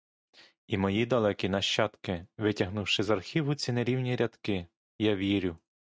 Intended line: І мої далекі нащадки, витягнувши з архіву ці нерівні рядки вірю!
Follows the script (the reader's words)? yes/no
no